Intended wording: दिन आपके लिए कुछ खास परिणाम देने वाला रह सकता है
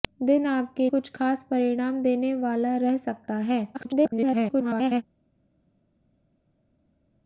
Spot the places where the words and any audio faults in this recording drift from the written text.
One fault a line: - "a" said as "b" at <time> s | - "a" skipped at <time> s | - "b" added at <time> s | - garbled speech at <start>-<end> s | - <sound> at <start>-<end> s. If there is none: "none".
- "लिए" skipped at 0.9 s
- garbled speech at 3.7-5.0 s